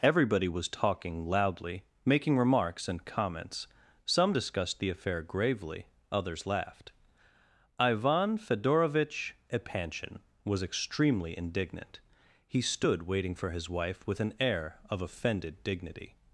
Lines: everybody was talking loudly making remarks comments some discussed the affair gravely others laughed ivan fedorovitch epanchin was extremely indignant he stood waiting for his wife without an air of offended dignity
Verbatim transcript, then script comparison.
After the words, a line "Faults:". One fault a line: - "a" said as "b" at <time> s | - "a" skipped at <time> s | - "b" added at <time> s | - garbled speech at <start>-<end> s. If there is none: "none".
everybody was talking loudly making remarks and comments some discussed the affair gravely others laughed ivan fedorovitch epanchin was extremely indignant he stood waiting for his wife with an air of offended dignity
Faults:
- "and" added at 2.9 s
- "without" said as "with" at 14.1 s